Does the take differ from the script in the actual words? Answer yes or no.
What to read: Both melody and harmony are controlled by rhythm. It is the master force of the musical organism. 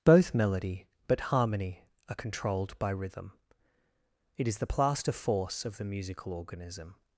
yes